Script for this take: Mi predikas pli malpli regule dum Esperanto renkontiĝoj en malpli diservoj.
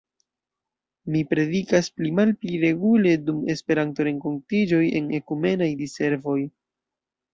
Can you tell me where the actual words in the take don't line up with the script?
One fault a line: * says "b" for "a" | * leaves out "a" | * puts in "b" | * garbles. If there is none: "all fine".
* says "ekumenaj" for "malpli"